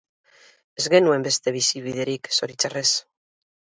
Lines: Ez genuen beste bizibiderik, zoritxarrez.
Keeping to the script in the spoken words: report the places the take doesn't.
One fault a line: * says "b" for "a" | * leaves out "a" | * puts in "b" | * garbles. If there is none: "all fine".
all fine